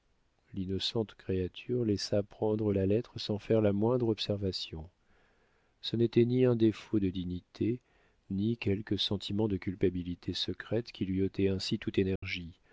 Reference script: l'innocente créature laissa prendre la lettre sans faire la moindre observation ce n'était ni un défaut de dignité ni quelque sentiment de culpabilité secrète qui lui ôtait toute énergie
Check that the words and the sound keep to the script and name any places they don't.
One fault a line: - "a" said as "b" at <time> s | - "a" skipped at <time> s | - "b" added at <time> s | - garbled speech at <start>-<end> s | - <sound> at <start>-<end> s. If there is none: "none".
- "ainsi" added at 11.5 s
- dropout at 12.2-12.2 s